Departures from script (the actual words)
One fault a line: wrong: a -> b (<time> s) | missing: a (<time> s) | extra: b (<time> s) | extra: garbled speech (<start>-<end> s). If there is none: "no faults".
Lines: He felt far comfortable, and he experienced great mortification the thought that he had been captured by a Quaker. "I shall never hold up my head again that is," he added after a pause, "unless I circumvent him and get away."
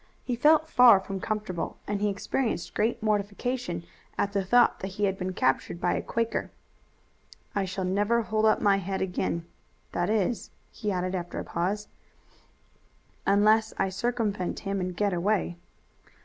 extra: from (1.0 s)
extra: at (4.2 s)